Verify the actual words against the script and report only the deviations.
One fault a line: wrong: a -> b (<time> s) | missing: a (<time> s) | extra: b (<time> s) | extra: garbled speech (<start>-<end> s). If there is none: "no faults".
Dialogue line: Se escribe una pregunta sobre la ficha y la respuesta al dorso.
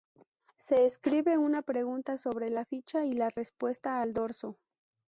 no faults